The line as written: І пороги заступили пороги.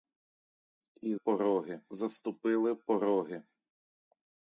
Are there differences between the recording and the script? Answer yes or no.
no